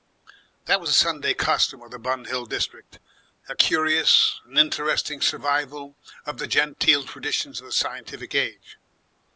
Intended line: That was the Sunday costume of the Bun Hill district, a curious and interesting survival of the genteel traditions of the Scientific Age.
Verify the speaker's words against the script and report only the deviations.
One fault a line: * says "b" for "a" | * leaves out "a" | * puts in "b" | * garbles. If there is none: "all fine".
all fine